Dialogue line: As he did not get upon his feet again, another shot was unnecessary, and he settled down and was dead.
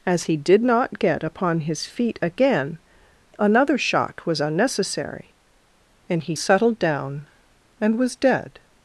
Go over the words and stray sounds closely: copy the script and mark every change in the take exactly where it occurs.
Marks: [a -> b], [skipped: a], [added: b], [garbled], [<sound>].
As he did not get upon his feet again, another shot was unnecessary, and he settled down and was dead.